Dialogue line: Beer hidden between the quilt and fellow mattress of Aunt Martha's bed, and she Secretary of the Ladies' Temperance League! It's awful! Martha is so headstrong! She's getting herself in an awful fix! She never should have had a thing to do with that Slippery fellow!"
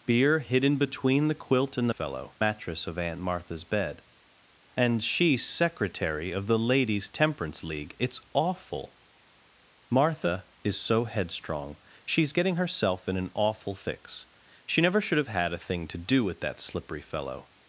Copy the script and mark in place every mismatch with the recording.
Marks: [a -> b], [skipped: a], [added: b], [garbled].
Beer hidden between the quilt and fellow mattress of Aunt Martha's bed, and she Secretary of the Ladies' Temperance League! It's awful! Martha is so headstrong! She's getting herself in an awful fix! She never should have had a thing to do with that Slippery fellow!"